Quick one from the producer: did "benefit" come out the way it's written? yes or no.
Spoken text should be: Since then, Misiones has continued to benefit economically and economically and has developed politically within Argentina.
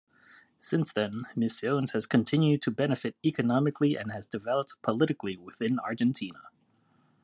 yes